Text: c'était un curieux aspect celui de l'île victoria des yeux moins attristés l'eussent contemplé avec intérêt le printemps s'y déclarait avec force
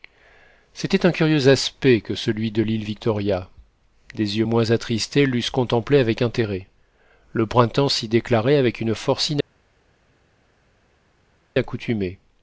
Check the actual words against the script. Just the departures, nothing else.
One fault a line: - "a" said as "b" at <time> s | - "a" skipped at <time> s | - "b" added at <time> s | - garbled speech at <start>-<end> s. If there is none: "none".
- "que" added at 2.0 s
- "une" added at 8.8 s